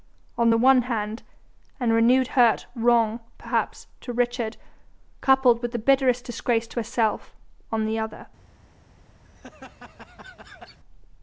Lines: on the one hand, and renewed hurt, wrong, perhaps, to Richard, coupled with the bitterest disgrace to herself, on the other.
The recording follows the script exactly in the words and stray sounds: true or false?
false